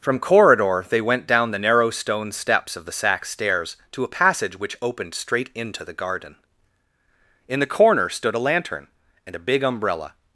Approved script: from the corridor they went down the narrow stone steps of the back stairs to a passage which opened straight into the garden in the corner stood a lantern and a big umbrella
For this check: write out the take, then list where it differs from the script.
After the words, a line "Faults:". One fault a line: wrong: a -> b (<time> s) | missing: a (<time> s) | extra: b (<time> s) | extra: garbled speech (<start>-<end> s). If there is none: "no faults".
from corridor they went down the narrow stone steps of the sack stairs to a passage which opened straight into the garden in the corner stood a lantern and a big umbrella
Faults:
missing: the (0.2 s)
wrong: back -> sack (2.9 s)